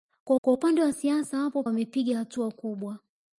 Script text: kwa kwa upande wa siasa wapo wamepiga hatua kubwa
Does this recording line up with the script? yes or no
yes